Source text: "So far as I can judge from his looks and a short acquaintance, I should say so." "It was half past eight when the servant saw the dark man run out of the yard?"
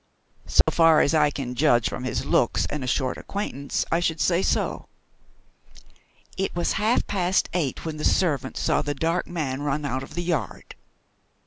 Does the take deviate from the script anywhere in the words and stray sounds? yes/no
yes